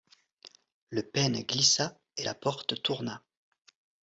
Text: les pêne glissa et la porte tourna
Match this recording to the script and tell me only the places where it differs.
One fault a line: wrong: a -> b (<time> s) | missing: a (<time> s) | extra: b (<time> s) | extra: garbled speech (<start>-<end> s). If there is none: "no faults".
wrong: les -> le (0.9 s)